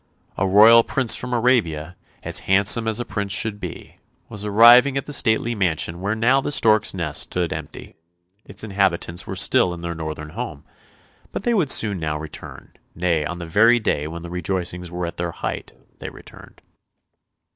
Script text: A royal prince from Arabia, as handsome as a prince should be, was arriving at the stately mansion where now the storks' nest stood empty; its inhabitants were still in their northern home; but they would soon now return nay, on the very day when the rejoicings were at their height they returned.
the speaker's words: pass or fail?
pass